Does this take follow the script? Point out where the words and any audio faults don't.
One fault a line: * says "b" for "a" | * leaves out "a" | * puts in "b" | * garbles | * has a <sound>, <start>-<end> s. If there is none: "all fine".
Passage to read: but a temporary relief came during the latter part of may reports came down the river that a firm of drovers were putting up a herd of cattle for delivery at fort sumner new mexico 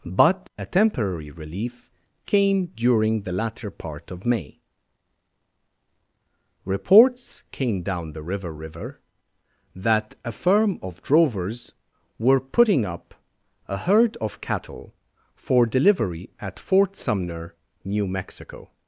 * puts in "river"